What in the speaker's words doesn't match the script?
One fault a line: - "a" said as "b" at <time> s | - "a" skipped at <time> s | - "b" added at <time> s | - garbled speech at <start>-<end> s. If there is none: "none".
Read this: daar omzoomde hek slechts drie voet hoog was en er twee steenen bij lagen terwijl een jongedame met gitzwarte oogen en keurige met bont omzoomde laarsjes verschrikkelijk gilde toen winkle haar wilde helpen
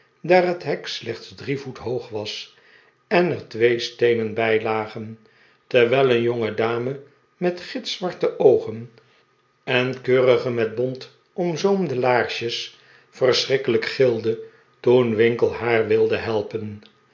- "omzoomde" said as "het" at 0.5 s